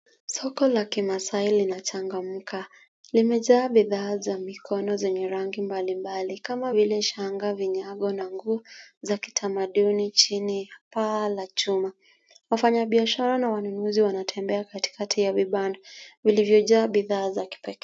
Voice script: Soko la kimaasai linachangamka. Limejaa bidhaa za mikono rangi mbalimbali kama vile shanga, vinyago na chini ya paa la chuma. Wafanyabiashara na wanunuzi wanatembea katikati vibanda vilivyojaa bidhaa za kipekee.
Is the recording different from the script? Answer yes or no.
yes